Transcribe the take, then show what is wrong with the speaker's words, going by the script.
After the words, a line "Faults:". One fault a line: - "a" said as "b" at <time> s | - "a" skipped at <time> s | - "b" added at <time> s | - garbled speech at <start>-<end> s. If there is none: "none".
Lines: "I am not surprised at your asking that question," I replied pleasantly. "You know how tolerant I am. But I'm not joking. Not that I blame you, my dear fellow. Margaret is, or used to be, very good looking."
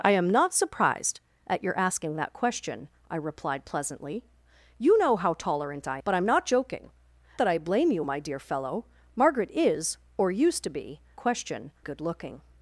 "I am not surprised at your asking that question," I replied pleasantly. "You know how tolerant I. But I'm not joking. That I blame you, my dear fellow. Margaret is, or used to be, question good looking."
Faults:
- "am" skipped at 6.0 s
- "Not" skipped at 6.9 s
- "very" said as "question" at 11.2 s